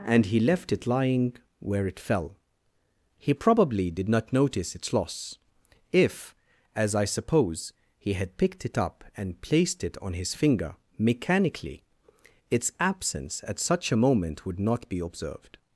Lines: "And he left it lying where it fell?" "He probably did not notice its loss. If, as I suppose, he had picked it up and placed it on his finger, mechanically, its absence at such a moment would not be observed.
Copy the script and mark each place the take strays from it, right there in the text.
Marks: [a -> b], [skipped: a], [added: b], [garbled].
"And he left it lying where it fell?" "He probably did not notice its loss. If, as I suppose, he had picked it up and placed it on his finger, mechanically, its absence at such a moment would not be observed.